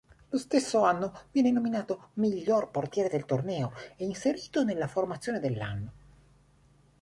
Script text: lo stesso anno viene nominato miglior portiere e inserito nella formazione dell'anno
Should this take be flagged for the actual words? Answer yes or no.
yes